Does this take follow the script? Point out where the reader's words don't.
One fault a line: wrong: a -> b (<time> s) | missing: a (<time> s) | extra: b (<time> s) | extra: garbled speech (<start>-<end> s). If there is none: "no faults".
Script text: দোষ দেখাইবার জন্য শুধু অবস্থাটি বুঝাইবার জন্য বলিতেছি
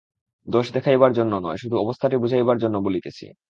extra: নয় (1.4 s)